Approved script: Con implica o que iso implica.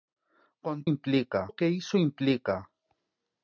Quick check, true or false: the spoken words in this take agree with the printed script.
true